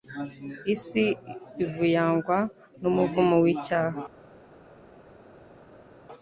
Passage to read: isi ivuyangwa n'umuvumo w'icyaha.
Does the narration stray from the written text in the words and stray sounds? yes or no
no